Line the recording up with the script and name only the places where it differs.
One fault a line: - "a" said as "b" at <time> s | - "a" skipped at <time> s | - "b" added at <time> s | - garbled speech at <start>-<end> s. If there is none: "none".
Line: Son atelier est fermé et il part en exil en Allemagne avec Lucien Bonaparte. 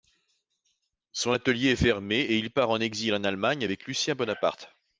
none